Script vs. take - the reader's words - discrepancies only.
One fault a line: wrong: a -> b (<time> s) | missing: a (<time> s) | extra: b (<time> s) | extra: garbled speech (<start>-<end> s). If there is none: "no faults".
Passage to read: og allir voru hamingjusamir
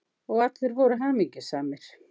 no faults